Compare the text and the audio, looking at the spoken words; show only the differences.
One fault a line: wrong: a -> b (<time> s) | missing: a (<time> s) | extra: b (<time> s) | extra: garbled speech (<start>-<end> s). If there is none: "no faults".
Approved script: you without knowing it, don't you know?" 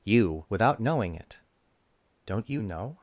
no faults